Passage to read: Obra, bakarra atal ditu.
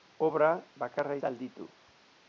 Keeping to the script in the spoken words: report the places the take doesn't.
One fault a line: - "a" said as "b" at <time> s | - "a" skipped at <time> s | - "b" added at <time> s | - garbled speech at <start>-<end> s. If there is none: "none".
none